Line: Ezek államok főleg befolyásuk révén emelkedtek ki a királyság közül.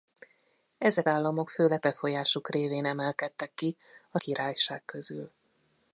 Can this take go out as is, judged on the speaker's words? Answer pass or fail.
pass